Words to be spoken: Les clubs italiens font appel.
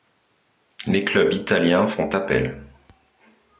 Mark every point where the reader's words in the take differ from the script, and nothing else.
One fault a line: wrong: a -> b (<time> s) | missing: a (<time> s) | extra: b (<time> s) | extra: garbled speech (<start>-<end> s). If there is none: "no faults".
no faults